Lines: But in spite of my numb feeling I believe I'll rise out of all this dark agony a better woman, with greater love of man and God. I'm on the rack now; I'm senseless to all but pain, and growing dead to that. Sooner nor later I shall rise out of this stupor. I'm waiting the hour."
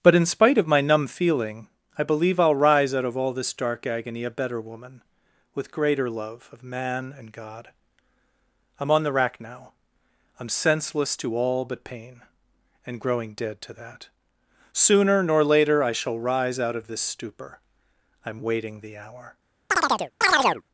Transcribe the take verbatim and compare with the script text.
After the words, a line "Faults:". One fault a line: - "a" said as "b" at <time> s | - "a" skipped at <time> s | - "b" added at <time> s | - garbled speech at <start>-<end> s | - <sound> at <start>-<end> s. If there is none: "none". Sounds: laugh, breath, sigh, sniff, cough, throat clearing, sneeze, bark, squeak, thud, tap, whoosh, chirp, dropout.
But in spite of my numb feeling I believe I'll rise out of all this dark agony a better woman, with greater love of man and God. I'm on the rack now; I'm senseless to all but pain, and growing dead to that. Sooner nor later I shall rise out of this stupor. I'm waiting the hour."
Faults:
- chirp at 19.7-20.6 s